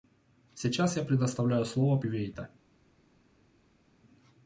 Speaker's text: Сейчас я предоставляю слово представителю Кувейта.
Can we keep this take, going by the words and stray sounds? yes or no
no